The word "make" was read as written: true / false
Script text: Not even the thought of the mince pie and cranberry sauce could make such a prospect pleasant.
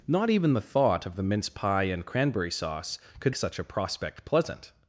false